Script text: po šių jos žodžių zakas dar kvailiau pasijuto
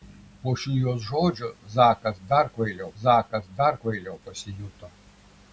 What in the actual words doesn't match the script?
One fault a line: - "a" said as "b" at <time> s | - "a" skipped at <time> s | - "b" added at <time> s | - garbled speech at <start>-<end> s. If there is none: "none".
- "zakas dar kvailiau" added at 3.0 s